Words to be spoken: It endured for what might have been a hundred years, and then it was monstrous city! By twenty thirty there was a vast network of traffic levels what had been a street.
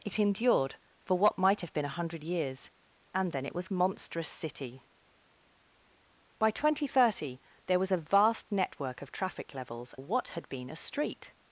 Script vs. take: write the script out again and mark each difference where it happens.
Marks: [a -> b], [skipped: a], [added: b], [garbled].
It endured for what might have been a hundred years, and then it was monstrous city! By twenty thirty there was a vast network of traffic levels what had been a street.